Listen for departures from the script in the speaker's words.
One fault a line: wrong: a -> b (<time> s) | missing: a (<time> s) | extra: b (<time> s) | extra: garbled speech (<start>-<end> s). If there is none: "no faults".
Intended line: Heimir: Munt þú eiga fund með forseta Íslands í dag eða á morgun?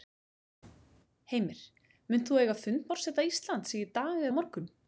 missing: með (2.9 s)
missing: eða (4.3 s)